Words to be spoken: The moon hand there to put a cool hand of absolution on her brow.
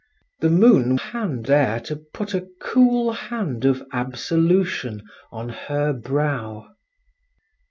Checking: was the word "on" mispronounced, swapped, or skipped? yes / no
no